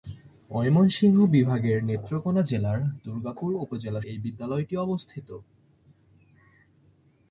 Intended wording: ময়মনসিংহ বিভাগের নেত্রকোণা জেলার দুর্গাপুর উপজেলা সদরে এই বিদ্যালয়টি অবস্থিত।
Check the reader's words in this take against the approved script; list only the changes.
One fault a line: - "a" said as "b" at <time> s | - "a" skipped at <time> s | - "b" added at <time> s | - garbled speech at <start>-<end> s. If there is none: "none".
- "সদরে" skipped at 4.0 s